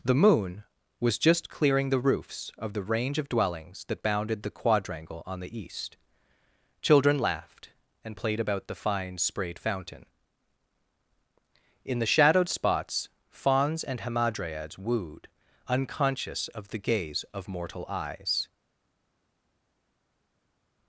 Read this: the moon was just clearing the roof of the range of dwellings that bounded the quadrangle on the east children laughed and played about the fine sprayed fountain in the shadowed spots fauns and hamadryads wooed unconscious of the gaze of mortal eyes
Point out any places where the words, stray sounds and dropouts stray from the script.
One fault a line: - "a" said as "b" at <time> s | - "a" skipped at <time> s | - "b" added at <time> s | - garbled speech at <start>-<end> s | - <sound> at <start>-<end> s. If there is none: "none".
- "roof" said as "roofs" at 2.0 s